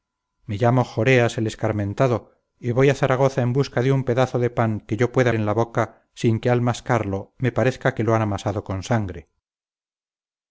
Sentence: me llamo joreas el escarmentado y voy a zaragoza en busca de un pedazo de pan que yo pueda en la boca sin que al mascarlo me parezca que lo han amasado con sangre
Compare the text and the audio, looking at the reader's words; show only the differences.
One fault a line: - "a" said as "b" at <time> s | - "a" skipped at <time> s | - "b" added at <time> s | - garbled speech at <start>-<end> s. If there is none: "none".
none